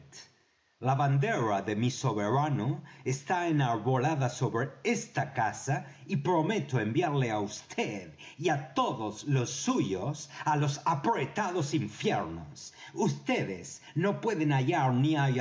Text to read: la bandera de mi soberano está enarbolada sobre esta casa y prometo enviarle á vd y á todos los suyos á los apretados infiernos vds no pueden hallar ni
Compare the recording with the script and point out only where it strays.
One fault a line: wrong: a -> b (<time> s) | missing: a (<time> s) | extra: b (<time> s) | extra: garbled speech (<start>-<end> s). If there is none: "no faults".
no faults